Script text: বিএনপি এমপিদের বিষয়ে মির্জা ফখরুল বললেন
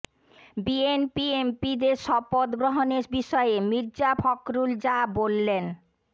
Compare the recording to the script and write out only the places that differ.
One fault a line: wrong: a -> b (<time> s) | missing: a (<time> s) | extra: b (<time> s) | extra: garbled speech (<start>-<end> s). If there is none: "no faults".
extra: শপথ গ্রহণের (2.0 s)
extra: যা (4.8 s)